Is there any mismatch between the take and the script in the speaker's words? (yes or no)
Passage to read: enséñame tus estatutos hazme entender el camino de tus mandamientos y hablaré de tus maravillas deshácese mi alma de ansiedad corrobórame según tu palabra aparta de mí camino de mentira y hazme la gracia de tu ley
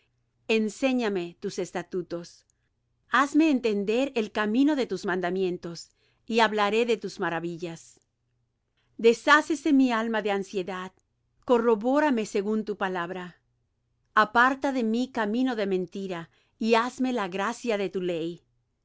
no